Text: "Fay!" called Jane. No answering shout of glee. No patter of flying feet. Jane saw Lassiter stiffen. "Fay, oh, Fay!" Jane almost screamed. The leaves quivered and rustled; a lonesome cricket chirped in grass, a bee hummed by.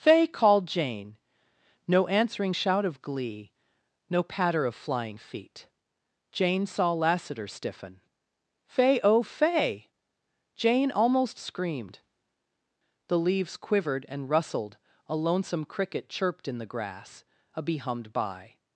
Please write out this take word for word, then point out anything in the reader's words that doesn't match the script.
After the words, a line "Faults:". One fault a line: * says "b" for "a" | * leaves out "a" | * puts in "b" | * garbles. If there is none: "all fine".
"Fay!" called Jane. No answering shout of glee. No patter of flying feet. Jane saw Lassiter stiffen. "Fay, oh, Fay!" Jane almost screamed. The leaves quivered and rustled; a lonesome cricket chirped in the grass, a bee hummed by.
Faults:
* puts in "the"